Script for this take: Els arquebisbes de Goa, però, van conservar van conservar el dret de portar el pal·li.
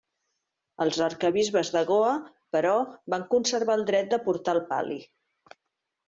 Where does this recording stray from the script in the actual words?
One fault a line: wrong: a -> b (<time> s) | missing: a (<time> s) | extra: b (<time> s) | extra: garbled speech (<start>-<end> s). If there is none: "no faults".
missing: van conservar (3.8 s)